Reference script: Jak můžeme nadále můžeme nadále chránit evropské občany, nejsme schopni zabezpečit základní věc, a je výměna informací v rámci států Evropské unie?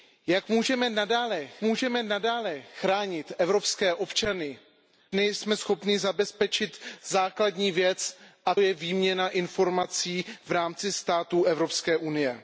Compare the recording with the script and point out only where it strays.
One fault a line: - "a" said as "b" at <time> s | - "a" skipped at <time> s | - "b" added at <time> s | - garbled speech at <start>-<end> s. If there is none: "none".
none